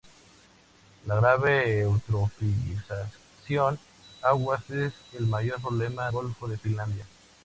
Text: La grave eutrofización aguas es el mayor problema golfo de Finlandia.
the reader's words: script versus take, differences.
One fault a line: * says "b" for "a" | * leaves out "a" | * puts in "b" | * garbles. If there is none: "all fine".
all fine